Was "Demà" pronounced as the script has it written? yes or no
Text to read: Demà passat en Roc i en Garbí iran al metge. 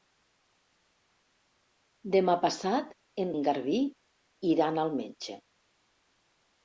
yes